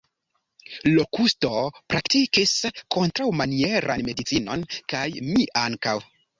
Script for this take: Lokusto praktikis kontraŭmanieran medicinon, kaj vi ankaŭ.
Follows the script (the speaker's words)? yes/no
no